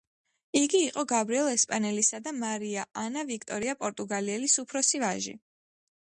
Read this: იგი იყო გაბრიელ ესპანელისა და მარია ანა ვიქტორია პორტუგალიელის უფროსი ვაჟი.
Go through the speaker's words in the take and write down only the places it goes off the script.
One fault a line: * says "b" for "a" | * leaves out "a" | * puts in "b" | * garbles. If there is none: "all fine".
all fine